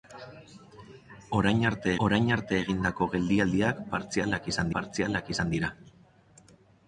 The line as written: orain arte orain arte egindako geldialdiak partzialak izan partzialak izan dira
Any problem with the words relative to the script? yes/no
no